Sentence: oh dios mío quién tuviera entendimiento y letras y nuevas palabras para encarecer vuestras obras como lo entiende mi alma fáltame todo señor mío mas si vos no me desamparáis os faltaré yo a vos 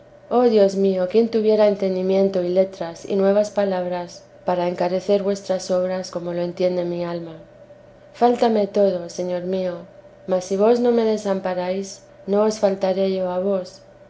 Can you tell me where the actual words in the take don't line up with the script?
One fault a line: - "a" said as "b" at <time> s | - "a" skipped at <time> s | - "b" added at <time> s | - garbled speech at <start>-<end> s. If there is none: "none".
- "no" added at 12.3 s